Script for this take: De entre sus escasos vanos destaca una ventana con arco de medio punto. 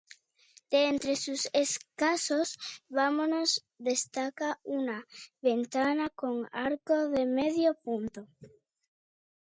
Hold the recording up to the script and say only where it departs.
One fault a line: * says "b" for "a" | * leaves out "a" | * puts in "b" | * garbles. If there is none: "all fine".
all fine